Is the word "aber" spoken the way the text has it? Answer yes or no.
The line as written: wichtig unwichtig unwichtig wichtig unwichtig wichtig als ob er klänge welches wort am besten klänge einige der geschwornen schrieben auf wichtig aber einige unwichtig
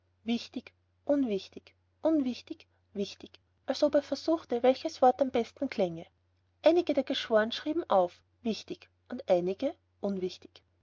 no